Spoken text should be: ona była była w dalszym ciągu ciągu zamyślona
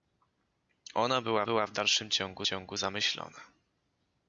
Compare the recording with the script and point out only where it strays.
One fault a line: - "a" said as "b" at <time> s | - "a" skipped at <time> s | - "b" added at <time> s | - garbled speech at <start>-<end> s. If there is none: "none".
none